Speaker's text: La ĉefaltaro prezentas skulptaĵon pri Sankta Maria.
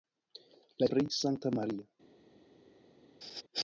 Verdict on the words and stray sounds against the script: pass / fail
fail